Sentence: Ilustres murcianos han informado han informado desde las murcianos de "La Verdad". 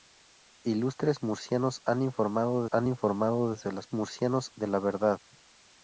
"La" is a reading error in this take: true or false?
false